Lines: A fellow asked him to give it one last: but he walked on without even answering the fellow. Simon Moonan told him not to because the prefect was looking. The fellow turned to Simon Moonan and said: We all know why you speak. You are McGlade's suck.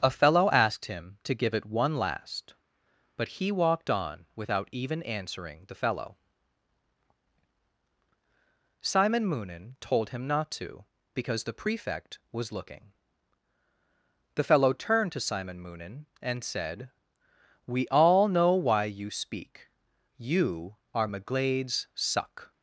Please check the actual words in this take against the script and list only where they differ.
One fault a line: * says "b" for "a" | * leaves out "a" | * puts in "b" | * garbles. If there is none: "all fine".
all fine